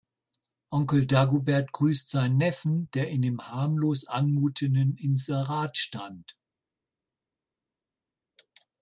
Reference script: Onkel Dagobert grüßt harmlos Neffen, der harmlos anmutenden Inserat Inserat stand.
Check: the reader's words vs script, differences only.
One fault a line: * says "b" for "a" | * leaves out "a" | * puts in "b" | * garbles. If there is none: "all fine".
* says "seinen" for "harmlos"
* puts in "in dem"
* leaves out "Inserat"